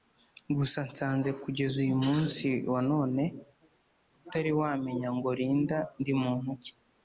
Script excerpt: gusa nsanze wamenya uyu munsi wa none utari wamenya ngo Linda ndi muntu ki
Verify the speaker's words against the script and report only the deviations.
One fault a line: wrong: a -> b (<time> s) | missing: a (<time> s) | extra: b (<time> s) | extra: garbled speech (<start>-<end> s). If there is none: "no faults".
wrong: wamenya -> kugeza (1.4 s)